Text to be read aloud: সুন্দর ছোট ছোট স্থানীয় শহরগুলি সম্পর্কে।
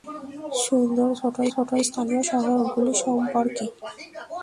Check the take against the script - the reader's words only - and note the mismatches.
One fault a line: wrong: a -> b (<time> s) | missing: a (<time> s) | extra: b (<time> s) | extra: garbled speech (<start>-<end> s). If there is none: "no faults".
no faults